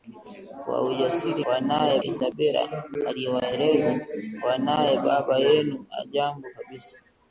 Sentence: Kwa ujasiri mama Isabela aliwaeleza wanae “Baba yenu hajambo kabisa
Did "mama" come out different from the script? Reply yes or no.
yes